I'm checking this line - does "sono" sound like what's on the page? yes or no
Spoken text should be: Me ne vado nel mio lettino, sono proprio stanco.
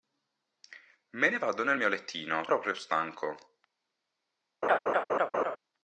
no